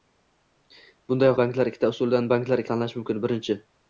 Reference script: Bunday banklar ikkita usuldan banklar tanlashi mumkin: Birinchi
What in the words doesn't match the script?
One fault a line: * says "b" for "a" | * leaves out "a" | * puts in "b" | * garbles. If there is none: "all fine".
all fine